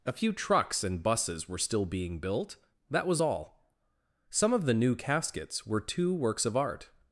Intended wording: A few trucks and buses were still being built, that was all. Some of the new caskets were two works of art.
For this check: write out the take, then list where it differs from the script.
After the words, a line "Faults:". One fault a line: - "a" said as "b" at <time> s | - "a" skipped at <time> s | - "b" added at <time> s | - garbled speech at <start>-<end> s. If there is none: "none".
A few trucks and buses were still being built, that was all. Some of the new caskets were two works of art.
Faults:
none